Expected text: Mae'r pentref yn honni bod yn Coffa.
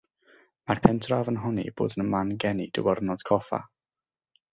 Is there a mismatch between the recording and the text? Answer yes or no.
yes